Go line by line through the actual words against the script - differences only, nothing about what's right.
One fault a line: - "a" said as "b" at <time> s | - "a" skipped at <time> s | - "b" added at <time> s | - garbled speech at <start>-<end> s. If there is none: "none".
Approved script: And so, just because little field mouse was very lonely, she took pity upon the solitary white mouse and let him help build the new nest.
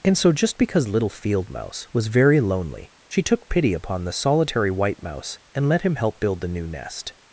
none